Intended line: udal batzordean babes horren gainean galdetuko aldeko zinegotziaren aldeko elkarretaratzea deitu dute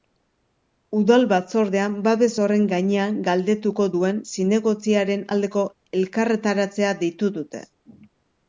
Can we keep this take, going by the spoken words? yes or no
no